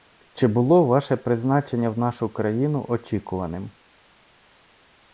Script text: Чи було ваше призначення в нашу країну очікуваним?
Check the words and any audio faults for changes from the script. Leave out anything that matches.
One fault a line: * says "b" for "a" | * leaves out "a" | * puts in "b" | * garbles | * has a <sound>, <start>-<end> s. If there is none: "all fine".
all fine